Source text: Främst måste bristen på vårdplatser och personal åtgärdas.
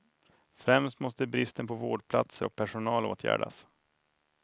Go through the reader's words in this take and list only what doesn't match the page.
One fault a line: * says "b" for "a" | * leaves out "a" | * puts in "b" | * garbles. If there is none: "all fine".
all fine